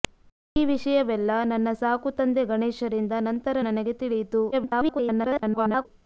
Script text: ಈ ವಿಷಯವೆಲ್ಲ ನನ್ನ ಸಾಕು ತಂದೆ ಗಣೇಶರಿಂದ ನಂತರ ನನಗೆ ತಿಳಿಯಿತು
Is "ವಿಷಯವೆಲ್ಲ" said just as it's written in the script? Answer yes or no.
yes